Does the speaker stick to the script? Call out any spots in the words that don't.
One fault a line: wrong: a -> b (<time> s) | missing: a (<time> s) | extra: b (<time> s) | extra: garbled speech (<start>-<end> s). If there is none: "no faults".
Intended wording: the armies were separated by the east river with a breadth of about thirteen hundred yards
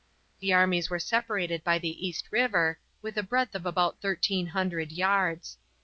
no faults